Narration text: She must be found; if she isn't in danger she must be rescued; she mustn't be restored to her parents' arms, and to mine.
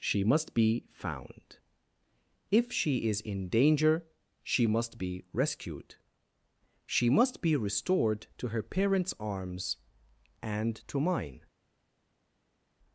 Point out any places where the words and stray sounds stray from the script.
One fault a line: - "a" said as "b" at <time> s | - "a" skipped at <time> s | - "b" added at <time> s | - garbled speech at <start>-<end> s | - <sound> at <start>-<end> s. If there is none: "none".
- "isn't" said as "is" at 3.1 s
- "mustn't" said as "must" at 7.1 s